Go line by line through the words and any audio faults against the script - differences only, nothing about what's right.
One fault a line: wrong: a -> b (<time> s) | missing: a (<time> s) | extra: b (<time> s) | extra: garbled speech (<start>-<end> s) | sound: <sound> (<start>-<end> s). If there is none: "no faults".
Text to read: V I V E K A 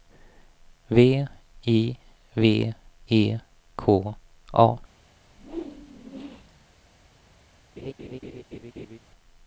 sound: whoosh (5.3-6.7 s)
sound: laugh (7.8-9.0 s)